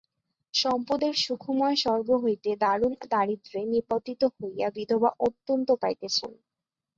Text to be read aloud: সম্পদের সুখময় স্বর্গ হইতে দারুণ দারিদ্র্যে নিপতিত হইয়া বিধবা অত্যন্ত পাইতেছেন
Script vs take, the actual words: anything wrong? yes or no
no